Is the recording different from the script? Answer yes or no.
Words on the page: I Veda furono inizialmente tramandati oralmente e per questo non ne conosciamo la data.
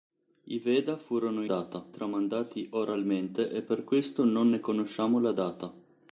yes